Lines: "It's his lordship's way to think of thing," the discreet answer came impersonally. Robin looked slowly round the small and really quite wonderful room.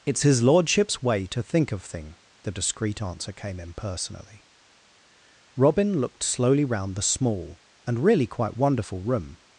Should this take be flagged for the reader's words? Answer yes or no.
no